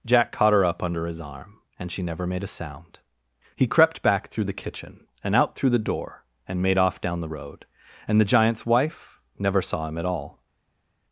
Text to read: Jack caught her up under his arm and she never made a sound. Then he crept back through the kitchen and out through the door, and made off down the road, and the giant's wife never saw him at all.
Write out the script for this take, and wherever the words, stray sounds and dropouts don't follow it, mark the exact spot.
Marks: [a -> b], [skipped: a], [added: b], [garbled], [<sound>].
Jack caught her up under his arm and she never made a sound. [skipped: Then] he crept back through the kitchen and out through the door, and made off down the road, and the giant's wife never saw him at all.